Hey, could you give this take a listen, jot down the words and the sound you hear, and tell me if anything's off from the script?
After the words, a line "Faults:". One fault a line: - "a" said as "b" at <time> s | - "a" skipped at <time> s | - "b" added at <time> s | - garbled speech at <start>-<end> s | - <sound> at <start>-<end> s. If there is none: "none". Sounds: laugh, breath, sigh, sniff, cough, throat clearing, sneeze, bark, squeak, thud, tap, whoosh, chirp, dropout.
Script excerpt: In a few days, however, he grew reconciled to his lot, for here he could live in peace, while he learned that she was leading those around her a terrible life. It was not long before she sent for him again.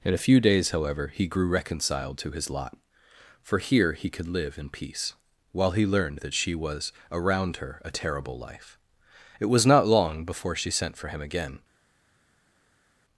In a few days, however, he grew reconciled to his lot, for here he could live in peace, while he learned that she was around her a terrible life. It was not long before she sent for him again.
Faults:
- "leading those" skipped at 6.9 s